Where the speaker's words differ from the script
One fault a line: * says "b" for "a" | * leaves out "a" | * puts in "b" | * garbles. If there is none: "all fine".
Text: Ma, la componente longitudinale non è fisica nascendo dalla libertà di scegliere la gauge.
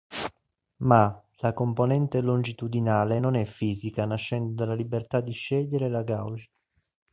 all fine